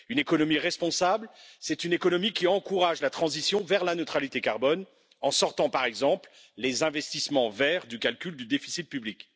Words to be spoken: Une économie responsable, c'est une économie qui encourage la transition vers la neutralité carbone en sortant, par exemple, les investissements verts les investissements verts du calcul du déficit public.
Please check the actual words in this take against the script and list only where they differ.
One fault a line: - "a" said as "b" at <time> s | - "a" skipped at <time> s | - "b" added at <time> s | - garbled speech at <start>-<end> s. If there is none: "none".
- "les investissements verts" skipped at 7.9 s